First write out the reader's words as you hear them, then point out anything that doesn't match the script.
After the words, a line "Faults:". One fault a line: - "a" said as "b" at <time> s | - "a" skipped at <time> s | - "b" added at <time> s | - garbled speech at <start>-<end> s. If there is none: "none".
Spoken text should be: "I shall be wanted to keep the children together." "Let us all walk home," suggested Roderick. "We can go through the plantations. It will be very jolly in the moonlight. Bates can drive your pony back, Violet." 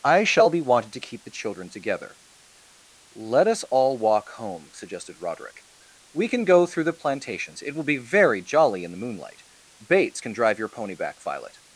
"I shall be wanted to keep the children together." "Let us all walk home," suggested Roderick. "We can go through the plantations. It will be very jolly in the moonlight. Bates can drive your pony back, Violet."
Faults:
none